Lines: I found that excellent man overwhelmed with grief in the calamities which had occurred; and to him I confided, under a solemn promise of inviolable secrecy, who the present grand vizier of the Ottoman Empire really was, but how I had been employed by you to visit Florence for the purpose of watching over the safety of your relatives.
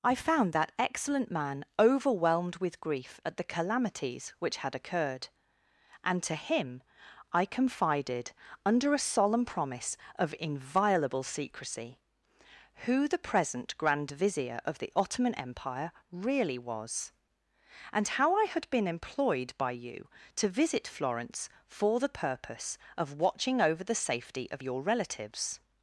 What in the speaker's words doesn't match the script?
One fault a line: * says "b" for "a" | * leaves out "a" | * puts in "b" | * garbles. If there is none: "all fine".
* says "at" for "in"
* says "and" for "but"